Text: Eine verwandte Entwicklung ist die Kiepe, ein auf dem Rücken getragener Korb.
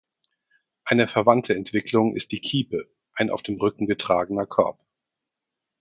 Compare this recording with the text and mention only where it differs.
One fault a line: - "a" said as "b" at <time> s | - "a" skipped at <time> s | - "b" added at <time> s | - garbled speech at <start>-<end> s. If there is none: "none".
none